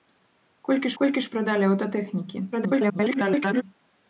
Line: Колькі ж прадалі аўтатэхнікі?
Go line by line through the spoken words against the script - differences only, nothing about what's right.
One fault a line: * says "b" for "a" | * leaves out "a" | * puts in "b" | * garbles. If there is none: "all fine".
* puts in "колькі"
* garbles